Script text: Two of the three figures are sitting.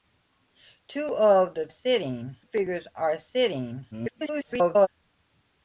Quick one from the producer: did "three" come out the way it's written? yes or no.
no